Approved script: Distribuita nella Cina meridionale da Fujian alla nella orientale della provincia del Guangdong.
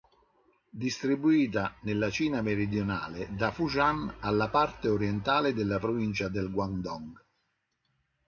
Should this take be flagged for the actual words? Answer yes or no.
yes